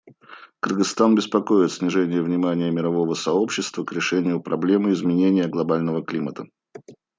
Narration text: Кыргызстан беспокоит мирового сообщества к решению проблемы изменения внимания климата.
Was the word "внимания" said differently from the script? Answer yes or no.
yes